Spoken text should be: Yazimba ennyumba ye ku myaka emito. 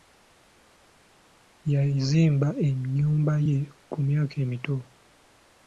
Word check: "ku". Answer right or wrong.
right